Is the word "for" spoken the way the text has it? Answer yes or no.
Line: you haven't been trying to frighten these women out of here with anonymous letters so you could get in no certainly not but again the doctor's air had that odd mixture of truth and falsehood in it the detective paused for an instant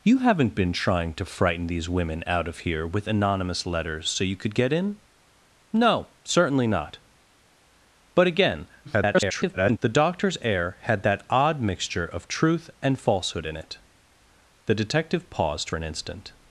no